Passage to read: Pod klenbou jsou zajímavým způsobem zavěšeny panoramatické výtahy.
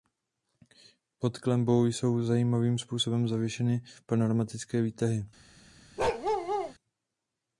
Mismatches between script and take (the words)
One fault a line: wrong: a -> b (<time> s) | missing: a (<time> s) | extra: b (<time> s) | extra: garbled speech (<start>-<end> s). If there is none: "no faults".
no faults